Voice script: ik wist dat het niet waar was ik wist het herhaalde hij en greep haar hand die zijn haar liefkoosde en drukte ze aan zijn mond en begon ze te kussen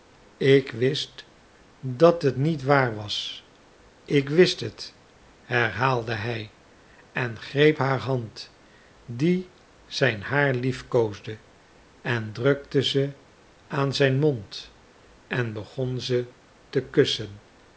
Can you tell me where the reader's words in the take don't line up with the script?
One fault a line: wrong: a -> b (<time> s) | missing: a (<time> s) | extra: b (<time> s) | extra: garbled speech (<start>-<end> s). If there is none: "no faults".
no faults